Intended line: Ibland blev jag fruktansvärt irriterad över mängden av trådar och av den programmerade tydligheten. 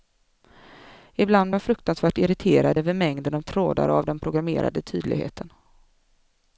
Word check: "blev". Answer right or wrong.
wrong